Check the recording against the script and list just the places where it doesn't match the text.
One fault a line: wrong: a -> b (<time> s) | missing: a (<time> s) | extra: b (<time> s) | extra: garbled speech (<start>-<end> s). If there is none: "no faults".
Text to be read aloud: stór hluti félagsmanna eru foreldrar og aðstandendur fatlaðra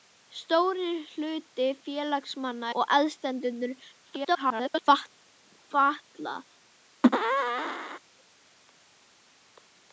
missing: eru foreldrar (2.7 s)
extra: garbled speech (4.1-4.8 s)